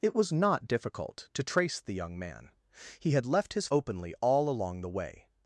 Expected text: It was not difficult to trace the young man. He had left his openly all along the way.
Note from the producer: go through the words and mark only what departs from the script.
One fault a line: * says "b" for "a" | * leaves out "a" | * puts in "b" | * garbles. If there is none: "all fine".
all fine